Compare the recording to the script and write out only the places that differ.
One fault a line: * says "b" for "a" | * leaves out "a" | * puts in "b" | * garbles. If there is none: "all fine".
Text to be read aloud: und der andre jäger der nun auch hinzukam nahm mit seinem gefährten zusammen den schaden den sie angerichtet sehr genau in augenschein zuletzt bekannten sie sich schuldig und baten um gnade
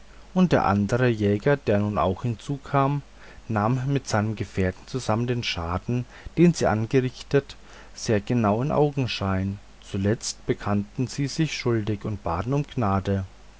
all fine